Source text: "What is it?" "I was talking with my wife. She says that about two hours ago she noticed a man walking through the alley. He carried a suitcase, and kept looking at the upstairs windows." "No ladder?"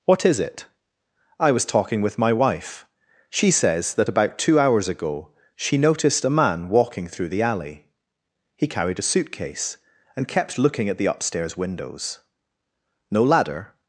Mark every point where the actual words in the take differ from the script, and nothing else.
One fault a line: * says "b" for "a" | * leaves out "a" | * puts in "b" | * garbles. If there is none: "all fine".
all fine